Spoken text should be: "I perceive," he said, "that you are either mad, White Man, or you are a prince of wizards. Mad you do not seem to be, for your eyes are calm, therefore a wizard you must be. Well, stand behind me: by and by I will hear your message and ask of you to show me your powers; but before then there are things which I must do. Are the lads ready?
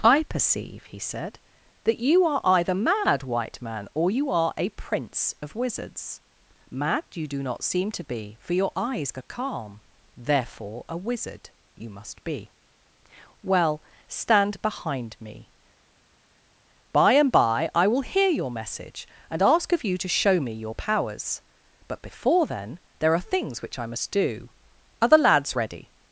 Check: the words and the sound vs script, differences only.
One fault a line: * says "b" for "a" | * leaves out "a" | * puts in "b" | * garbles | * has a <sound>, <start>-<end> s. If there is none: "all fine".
all fine